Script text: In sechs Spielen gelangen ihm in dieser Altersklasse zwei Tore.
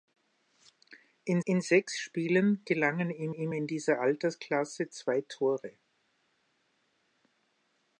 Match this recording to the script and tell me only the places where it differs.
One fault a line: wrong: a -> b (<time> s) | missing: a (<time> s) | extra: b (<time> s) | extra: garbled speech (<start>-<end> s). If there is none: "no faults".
extra: in (1.4 s)
extra: ihm (3.3 s)